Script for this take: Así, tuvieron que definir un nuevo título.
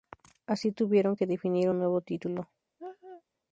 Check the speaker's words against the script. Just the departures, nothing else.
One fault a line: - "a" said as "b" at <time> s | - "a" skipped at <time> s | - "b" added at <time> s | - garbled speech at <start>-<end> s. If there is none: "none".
none